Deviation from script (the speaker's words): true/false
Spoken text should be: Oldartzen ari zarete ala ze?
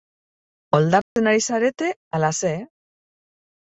false